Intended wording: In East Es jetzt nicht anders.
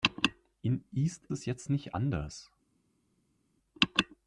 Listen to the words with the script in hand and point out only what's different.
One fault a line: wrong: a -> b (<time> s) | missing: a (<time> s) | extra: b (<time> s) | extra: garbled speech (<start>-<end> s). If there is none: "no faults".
no faults